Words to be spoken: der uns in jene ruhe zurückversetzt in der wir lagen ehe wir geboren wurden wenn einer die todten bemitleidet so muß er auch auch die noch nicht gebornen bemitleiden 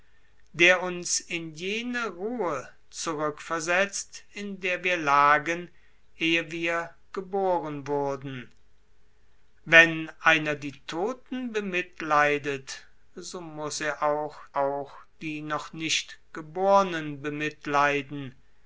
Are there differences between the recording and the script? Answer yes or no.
no